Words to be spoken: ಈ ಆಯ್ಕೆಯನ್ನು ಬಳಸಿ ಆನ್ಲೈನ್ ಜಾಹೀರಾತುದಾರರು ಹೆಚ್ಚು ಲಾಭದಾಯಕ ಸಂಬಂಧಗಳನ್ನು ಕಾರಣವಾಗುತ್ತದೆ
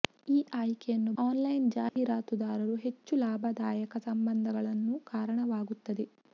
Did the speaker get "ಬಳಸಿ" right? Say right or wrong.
wrong